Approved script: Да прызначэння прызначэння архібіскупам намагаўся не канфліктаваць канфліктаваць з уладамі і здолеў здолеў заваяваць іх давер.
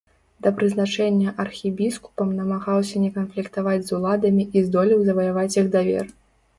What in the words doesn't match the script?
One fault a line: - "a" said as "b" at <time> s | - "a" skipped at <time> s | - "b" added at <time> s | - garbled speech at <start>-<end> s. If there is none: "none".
- "прызначэння" skipped at 1.3 s
- "канфліктаваць" skipped at 3.8 s
- "здолеў" skipped at 5.0 s